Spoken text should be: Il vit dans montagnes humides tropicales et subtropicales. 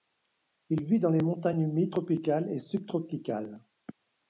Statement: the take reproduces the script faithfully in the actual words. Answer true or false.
false